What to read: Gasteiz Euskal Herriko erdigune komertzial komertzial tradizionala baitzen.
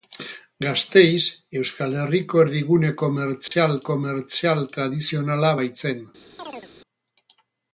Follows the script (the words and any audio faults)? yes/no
no